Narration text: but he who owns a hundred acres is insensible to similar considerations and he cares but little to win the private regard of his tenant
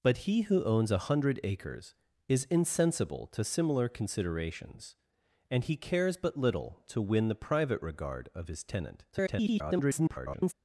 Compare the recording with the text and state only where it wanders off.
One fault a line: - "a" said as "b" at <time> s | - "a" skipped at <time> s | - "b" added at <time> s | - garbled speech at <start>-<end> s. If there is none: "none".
- garbled speech at 9.1-10.5 s